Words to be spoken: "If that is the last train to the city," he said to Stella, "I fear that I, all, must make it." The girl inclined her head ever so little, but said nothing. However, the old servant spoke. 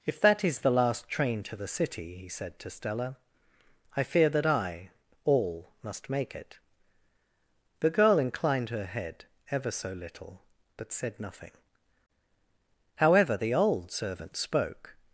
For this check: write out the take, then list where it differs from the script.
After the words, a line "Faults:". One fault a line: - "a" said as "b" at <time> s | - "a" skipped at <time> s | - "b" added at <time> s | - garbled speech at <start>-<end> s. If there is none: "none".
"If that is the last train to the city," he said to Stella, "I fear that I, all, must make it." The girl inclined her head ever so little, but said nothing. However, the old servant spoke.
Faults:
none